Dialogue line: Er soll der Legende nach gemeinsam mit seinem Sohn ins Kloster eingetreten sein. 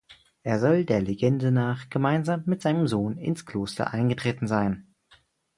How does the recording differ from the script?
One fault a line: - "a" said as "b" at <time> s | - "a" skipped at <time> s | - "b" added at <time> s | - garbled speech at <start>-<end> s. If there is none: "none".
none